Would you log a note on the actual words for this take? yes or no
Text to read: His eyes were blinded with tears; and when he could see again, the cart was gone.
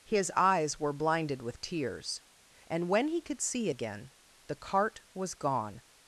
no